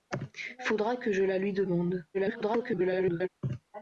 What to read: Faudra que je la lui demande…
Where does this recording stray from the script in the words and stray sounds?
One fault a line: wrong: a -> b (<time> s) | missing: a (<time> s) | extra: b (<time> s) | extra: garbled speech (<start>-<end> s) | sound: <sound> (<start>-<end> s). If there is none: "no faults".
extra: garbled speech (2.1-3.3 s)